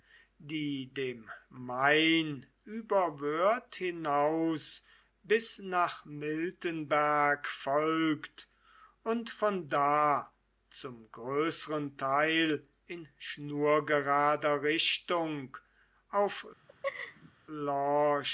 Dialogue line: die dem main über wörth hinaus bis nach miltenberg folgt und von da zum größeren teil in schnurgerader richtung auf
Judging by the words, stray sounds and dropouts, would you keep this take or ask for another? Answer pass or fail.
fail